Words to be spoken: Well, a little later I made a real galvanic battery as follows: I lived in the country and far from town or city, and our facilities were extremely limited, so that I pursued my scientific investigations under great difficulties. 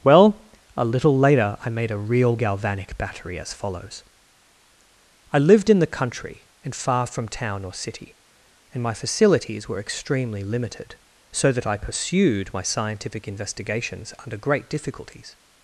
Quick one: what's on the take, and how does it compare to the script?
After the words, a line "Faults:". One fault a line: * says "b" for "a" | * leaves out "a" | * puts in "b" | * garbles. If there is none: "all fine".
Well, a little later I made a real galvanic battery as follows: I lived in the country and far from town or city, and my facilities were extremely limited, so that I pursued my scientific investigations under great difficulties.
Faults:
* says "my" for "our"